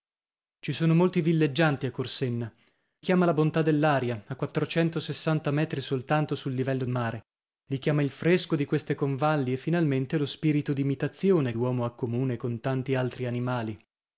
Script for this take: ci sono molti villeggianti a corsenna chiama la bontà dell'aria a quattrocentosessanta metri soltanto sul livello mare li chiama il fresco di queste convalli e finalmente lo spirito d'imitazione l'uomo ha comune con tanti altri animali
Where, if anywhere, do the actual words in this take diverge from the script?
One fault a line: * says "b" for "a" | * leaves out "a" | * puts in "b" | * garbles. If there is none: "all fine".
all fine